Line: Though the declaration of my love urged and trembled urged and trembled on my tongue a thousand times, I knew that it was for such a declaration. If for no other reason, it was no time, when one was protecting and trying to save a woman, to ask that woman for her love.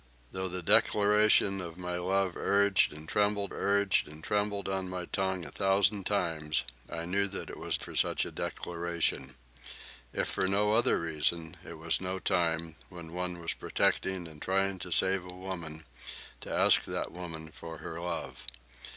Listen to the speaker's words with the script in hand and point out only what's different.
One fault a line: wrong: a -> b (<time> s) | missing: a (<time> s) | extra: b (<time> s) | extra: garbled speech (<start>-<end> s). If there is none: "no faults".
no faults